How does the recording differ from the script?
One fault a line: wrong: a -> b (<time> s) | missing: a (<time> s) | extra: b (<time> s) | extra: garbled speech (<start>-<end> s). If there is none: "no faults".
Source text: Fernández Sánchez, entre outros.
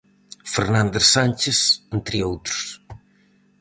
no faults